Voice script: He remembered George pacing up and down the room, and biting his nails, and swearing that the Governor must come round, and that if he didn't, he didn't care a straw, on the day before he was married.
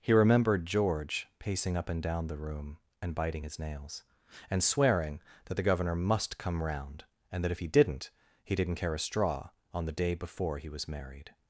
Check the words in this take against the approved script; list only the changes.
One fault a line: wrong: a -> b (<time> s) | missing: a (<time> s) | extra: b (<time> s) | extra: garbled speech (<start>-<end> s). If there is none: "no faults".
no faults